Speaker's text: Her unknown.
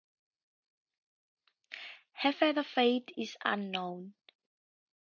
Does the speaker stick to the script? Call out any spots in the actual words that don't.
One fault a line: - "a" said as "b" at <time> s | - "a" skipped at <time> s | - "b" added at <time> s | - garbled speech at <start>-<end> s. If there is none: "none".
- "further fate is" added at 2.3 s